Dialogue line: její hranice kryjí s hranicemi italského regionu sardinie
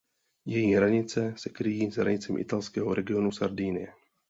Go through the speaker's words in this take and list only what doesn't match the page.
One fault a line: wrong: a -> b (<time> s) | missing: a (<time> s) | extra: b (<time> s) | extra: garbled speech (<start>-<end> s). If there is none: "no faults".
extra: se (1.4 s)